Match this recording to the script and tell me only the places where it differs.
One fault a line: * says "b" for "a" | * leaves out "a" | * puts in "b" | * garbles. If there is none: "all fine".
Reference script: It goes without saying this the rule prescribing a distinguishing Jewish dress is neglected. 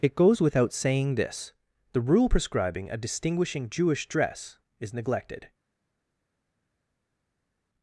all fine